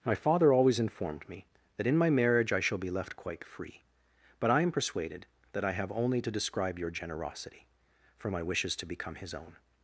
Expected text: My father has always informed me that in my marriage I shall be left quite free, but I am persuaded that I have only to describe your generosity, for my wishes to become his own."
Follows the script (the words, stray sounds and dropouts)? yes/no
no